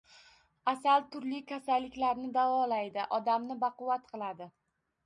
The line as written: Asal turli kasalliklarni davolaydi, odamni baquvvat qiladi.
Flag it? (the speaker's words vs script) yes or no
no